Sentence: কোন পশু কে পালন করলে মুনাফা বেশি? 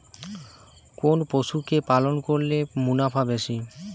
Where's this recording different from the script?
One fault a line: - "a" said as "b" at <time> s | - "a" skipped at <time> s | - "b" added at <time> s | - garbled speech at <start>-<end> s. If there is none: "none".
none